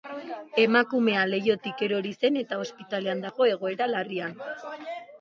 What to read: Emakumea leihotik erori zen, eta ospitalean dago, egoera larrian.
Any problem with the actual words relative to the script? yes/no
no